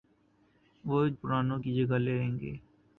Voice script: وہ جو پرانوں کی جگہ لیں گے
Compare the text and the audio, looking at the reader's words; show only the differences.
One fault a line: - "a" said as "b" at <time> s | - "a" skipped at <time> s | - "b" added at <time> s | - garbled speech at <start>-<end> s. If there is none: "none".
- "جو" skipped at 1.0 s